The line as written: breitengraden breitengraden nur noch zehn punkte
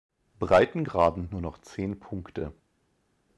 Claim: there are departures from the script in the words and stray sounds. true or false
true